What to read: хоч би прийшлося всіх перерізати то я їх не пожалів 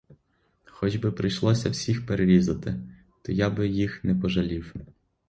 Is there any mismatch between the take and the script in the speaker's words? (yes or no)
yes